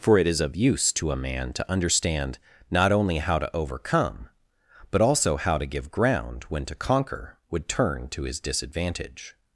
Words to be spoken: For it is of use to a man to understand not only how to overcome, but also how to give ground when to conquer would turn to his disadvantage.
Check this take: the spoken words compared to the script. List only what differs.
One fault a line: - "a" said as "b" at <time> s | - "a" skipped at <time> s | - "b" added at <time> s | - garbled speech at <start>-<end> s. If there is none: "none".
none